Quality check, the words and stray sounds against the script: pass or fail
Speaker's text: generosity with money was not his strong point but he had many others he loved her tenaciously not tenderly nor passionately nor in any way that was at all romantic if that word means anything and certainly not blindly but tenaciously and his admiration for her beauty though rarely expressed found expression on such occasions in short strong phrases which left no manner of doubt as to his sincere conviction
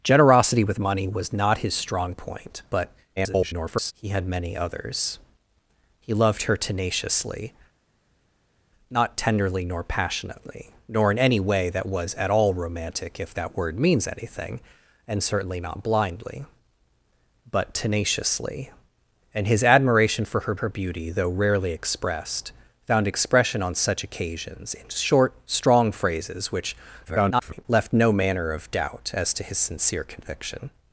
fail